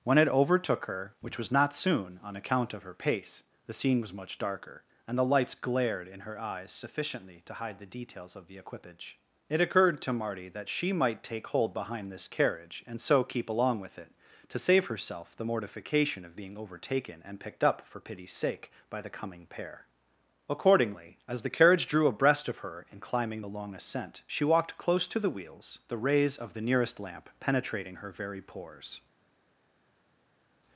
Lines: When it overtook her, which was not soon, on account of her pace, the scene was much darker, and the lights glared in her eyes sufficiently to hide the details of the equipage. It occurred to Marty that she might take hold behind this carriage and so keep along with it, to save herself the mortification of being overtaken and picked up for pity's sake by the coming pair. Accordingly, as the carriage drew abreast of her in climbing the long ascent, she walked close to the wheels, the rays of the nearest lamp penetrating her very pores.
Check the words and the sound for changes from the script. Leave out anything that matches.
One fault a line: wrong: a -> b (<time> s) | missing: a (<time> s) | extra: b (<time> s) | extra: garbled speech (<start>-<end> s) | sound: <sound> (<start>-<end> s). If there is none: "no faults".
no faults